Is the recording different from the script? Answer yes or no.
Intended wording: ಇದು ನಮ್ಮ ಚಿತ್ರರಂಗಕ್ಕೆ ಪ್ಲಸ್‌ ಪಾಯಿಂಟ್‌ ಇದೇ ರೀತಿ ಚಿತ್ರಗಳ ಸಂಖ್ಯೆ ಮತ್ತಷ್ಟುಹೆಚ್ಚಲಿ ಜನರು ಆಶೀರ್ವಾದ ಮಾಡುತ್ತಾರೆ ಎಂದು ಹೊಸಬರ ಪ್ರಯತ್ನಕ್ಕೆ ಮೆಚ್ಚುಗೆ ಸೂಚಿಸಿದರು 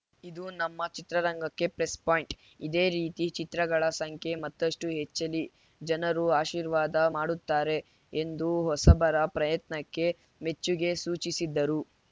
no